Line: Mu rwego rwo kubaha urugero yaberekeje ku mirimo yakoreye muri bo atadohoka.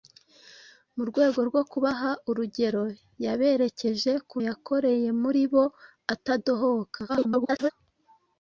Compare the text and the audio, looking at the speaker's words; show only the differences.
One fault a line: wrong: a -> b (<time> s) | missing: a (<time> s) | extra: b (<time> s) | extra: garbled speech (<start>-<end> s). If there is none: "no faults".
missing: mirimo (4.4 s)
extra: garbled speech (7.1-7.7 s)